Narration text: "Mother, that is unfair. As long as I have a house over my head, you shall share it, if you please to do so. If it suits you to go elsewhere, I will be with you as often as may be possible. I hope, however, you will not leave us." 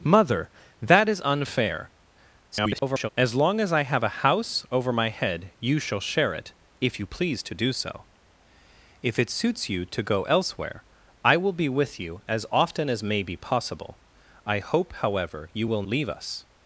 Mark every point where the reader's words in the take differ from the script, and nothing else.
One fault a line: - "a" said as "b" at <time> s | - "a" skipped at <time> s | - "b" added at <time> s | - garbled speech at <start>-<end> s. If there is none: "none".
- garbled speech at 2.5-3.1 s
- "not" skipped at 15.8 s